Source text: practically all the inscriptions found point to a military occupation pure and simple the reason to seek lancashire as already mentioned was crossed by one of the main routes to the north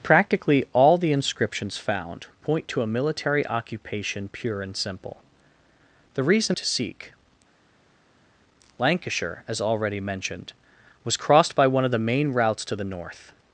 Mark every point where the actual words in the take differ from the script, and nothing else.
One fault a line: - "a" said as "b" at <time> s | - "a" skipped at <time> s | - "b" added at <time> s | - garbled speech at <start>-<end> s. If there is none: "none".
none